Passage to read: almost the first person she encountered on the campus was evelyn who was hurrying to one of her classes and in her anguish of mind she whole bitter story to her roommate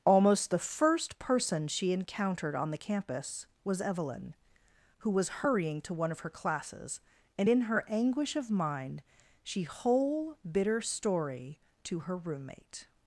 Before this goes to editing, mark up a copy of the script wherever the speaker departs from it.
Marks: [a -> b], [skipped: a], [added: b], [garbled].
almost the first person she encountered on the campus was evelyn who was hurrying to one of her classes and in her anguish of mind she whole bitter story to her roommate